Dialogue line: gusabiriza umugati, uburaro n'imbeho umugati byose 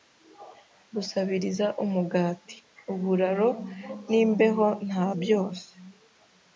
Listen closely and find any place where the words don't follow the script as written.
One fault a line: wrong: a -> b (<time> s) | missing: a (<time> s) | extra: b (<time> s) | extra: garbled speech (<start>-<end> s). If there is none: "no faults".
wrong: umugati -> nta (4.9 s)